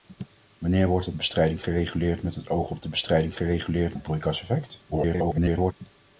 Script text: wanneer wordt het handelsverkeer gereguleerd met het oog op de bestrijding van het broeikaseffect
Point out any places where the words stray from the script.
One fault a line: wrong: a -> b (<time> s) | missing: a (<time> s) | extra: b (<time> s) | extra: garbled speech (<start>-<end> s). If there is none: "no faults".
wrong: handelsverkeer -> bestrijding (1.1 s)
wrong: van -> gereguleerd (3.3 s)
extra: garbled speech (4.9-5.7 s)